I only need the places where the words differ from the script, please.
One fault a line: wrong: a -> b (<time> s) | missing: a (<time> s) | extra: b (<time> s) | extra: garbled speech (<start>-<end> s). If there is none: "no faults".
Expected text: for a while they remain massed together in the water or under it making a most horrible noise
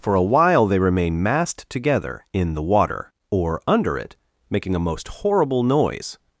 no faults